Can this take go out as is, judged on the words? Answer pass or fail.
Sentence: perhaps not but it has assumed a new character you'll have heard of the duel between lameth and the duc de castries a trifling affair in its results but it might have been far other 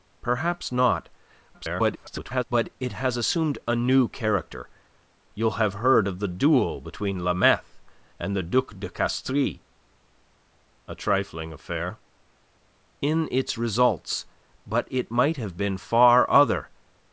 fail